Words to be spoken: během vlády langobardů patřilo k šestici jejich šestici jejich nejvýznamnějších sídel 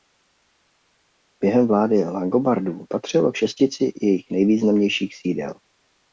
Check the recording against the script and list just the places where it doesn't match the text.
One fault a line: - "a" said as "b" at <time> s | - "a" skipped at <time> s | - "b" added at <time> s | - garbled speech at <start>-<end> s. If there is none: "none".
- "šestici jejich" skipped at 4.3 s